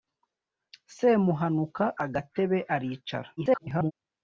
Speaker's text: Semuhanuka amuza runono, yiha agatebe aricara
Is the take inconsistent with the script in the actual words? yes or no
yes